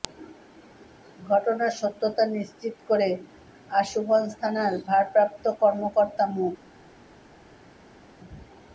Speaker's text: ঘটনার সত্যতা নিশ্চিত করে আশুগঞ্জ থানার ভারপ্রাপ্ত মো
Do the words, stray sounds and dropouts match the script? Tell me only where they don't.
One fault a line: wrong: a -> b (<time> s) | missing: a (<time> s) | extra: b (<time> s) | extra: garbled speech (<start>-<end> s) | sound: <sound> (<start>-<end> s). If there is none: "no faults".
extra: কর্মকর্তা (5.6 s)